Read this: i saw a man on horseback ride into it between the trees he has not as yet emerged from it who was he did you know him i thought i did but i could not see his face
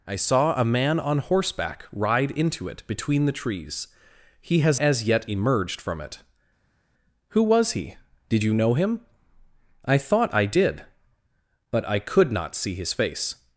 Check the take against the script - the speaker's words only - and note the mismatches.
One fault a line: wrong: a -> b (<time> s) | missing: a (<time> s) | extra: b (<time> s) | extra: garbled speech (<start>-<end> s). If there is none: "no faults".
missing: not (4.8 s)